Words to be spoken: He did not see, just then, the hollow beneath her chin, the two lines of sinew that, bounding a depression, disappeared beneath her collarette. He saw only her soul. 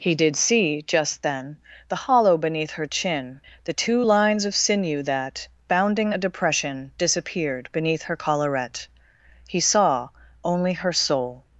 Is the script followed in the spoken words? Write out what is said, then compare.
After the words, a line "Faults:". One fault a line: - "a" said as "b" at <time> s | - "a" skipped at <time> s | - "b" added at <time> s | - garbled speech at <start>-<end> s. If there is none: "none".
He did see, just then, the hollow beneath her chin, the two lines of sinew that, bounding a depression, disappeared beneath her collarette. He saw only her soul.
Faults:
- "not" skipped at 0.3 s